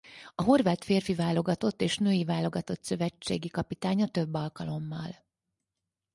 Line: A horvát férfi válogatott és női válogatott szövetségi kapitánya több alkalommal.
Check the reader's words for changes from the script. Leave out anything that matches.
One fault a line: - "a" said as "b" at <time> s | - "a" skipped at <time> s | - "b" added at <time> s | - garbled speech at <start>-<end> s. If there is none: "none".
none